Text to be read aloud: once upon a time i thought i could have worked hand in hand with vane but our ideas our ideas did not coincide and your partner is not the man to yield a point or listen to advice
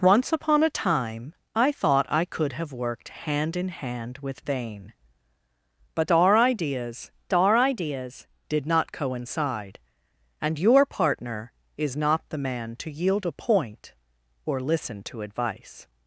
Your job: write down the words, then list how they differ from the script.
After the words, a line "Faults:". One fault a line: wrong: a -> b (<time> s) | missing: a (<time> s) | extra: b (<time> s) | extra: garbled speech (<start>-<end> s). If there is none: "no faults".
once upon a time i thought i could have worked hand in hand with vane but our ideas our ideas did not coincide and your partner is not the man to yield a point or listen to advice
Faults:
no faults